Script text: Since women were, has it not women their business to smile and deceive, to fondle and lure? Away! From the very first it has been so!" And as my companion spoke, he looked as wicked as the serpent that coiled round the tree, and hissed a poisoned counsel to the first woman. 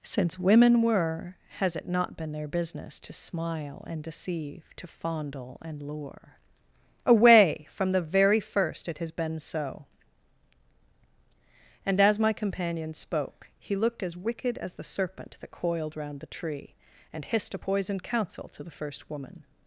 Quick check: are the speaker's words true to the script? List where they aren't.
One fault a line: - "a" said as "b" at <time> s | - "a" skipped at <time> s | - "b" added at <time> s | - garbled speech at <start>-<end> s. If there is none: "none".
- "women" said as "been" at 2.2 s